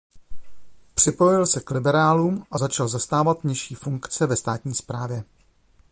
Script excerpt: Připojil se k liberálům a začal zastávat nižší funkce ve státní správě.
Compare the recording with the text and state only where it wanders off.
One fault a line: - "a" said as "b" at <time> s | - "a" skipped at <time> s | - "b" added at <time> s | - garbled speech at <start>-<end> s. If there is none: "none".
none